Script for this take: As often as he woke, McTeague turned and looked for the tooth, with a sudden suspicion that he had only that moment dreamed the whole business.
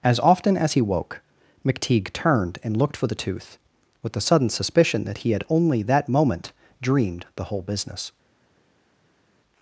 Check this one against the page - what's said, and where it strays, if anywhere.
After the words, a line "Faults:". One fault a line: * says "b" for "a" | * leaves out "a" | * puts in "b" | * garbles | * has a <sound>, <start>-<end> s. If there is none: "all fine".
As often as he woke, McTeague turned and looked for the tooth, with the sudden suspicion that he had only that moment dreamed the whole business.
Faults:
* says "the" for "a"